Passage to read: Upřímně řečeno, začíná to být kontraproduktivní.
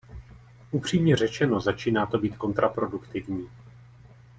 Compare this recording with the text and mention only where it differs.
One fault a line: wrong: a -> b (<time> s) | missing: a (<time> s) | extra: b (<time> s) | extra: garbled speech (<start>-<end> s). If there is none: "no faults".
no faults